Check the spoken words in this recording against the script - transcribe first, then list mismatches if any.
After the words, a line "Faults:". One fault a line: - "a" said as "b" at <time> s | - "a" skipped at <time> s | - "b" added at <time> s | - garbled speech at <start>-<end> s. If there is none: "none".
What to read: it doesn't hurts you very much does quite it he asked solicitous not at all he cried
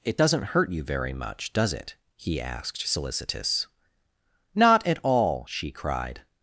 it doesn't hurt you very much does it he asked solicitous not at all she cried
Faults:
- "hurts" said as "hurt" at 0.5 s
- "quite" skipped at 1.7 s
- "he" said as "she" at 5.5 s